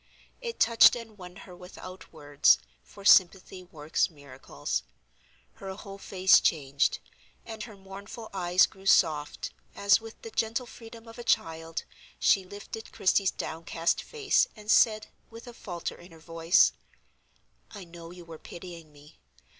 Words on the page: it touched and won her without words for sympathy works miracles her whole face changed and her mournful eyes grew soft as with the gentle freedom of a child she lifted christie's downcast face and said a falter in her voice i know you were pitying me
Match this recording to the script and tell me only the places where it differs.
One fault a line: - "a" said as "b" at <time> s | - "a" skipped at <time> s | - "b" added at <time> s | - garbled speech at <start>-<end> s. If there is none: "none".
- "with" added at 15.3 s